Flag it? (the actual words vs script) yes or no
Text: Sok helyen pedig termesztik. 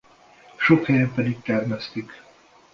no